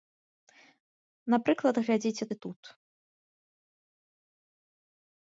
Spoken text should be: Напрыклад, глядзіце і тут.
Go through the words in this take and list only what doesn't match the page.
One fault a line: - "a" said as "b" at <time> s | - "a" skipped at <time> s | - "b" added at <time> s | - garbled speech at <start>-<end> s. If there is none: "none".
none